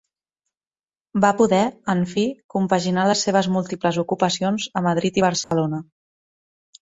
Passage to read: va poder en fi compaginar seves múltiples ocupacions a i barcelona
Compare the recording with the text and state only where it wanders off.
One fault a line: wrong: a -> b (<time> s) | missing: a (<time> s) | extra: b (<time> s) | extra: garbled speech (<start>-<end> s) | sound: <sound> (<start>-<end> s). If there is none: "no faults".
extra: les (3.1 s)
extra: madrid (4.9 s)
sound: dropout (5.4-5.5 s)